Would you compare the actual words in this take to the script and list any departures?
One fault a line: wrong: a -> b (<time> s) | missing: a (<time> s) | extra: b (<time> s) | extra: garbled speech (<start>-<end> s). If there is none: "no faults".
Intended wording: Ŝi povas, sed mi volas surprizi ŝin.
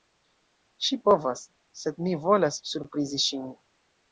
no faults